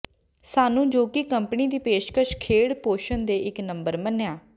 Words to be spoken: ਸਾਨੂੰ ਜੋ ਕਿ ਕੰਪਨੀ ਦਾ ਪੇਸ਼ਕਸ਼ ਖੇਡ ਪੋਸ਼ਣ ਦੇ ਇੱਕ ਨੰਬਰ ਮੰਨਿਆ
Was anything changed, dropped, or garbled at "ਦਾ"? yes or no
yes